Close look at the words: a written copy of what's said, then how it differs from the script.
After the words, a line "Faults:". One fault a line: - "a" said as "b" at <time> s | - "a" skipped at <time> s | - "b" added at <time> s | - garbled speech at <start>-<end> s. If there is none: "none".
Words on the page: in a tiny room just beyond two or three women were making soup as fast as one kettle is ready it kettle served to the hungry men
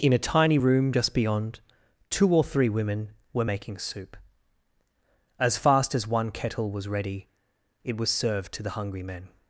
in a tiny room just beyond two or three women were making soup as fast as one kettle was ready it was served to the hungry men
Faults:
- "is" said as "was" at 6.7 s
- "kettle" said as "was" at 8.0 s